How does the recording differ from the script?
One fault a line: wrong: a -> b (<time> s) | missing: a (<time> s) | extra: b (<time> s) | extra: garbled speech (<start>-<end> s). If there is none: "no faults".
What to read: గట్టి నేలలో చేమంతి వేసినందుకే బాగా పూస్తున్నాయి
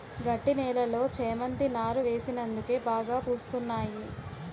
extra: నారు (1.8 s)